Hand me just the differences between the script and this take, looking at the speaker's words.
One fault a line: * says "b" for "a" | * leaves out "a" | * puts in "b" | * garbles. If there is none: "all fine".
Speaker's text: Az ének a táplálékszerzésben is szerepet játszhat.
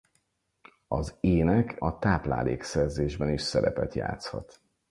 all fine